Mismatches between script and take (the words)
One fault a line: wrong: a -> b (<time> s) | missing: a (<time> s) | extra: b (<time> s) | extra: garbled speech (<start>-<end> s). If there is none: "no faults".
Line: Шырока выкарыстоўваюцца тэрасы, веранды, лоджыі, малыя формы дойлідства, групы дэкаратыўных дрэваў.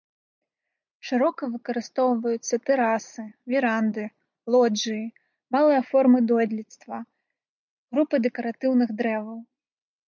no faults